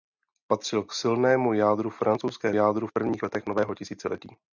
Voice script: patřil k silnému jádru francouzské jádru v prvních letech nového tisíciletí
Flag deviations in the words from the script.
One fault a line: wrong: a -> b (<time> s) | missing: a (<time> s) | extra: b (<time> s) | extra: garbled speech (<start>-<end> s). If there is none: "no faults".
no faults